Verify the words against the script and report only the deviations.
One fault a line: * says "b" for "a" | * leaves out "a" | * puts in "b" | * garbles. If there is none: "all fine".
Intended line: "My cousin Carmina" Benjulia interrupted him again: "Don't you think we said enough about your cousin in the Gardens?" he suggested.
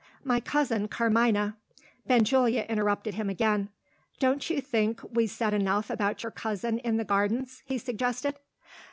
all fine